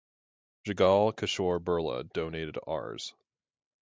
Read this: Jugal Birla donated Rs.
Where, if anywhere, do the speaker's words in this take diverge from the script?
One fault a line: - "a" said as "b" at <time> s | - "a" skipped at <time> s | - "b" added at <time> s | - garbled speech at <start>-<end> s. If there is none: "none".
- "Kishore" added at 1.1 s